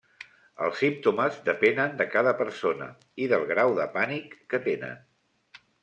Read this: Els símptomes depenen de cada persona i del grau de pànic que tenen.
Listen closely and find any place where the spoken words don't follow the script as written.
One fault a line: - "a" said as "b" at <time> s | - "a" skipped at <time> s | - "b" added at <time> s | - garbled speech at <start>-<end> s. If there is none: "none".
none